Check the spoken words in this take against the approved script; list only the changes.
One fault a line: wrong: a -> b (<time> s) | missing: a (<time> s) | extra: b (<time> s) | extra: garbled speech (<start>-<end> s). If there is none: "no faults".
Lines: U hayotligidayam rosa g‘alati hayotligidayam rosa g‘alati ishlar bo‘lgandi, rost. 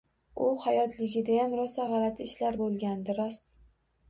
missing: hayotligidayam rosa g‘alati (2.3 s)